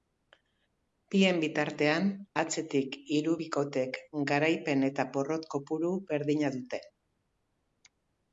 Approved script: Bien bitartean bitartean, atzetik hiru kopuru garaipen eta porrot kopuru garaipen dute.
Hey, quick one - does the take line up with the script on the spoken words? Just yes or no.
no